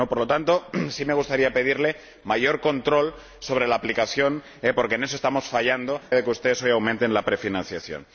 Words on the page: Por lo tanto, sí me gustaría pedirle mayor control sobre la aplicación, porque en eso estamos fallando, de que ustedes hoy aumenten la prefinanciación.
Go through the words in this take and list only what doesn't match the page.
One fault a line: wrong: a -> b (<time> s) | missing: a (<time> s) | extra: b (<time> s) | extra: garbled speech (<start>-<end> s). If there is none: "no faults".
no faults